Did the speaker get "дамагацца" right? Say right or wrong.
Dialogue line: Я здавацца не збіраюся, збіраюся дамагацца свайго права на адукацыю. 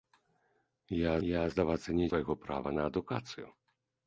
wrong